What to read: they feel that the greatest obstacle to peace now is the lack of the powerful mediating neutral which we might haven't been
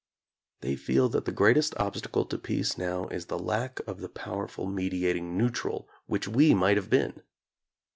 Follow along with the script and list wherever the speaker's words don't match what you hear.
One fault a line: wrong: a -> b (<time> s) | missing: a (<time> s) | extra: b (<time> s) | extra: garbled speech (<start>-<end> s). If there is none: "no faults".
wrong: haven't -> have (6.8 s)